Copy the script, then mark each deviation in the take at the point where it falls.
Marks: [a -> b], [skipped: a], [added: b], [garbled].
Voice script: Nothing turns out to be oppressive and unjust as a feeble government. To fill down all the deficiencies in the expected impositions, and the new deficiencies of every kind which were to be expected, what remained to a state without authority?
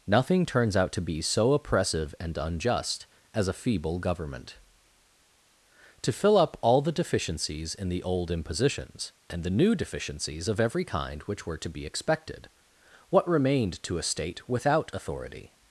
Nothing turns out to be [added: so] oppressive and unjust as a feeble government. To fill [down -> up] all the deficiencies in the [expected -> old] impositions, and the new deficiencies of every kind which were to be expected, what remained to a state without authority?